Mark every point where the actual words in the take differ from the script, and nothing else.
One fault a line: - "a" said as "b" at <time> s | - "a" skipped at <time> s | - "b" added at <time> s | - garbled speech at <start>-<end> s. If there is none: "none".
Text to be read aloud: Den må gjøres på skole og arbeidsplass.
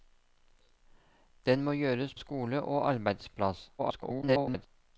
- "på" skipped at 2.1 s
- garbled speech at 3.8-4.7 s